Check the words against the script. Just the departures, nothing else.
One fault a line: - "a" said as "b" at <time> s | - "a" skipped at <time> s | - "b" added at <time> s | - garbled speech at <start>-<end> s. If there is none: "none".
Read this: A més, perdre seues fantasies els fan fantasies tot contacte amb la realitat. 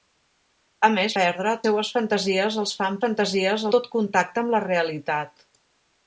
none